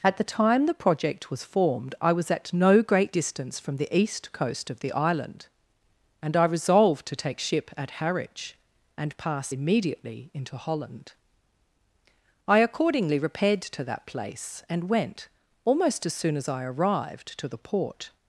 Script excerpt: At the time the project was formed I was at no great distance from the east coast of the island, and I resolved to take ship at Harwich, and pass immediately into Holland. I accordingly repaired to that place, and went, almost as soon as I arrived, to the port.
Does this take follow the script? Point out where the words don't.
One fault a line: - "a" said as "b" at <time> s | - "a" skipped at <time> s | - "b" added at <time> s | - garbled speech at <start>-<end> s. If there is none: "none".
none